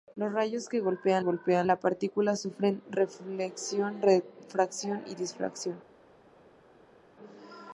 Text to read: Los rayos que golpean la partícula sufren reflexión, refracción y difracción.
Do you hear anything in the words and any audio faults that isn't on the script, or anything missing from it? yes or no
yes